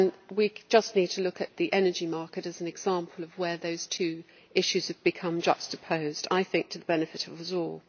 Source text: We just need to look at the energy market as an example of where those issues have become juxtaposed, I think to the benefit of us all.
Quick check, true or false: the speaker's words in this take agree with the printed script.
false